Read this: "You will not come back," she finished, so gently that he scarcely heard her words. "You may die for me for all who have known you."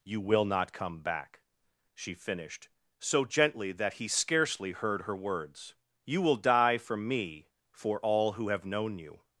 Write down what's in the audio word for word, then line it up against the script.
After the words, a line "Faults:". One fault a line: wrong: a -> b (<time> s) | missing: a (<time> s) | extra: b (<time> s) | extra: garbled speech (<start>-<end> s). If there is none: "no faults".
"You will not come back," she finished, so gently that he scarcely heard her words. "You will die for me for all who have known you."
Faults:
wrong: may -> will (6.2 s)